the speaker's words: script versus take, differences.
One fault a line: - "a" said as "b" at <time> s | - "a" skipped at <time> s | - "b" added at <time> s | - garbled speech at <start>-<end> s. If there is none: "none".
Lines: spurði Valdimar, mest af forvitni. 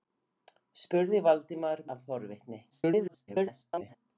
- "mest" skipped at 1.8 s
- garbled speech at 2.7-4.0 s